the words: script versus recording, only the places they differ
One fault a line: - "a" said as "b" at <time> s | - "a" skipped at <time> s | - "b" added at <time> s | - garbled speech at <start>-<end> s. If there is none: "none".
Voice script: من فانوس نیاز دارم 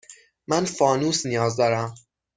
none